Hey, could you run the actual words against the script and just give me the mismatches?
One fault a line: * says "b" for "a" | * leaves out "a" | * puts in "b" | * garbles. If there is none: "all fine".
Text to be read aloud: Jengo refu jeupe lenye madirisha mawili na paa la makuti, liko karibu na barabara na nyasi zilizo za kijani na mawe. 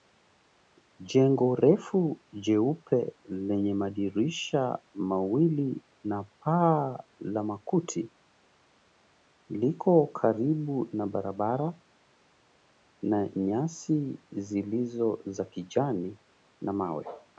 all fine